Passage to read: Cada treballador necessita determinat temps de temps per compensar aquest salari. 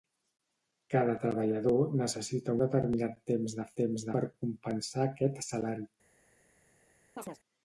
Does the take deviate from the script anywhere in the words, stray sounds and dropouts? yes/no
yes